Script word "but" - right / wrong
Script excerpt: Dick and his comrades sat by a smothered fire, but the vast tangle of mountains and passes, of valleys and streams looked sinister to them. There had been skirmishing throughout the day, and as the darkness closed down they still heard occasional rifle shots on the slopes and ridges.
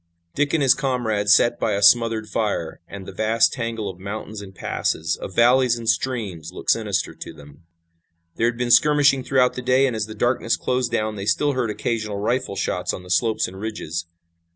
wrong